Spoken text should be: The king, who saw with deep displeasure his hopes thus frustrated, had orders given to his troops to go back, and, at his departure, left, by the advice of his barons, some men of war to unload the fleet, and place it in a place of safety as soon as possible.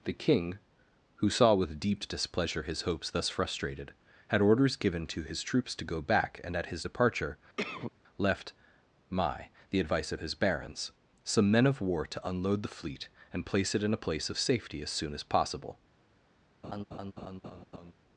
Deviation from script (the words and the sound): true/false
true